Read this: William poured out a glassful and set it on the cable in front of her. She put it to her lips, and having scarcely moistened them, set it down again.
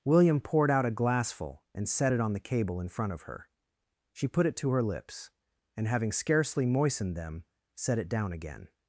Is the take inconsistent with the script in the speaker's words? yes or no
no